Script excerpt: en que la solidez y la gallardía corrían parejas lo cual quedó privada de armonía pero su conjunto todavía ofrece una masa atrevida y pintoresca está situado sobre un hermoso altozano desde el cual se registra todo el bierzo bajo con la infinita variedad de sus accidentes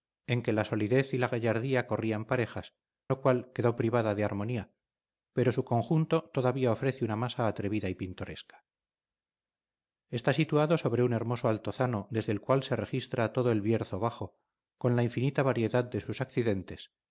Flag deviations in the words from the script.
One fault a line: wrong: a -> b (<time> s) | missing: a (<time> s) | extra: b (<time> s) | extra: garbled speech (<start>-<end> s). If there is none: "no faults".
no faults